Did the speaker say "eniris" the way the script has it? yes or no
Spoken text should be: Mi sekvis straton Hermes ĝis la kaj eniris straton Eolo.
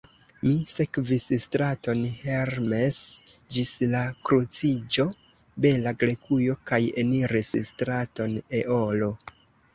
yes